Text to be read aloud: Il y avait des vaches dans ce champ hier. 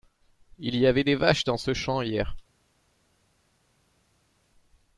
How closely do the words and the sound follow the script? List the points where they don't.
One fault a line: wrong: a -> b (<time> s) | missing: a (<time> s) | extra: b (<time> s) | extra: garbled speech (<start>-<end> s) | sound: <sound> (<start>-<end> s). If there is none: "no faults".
no faults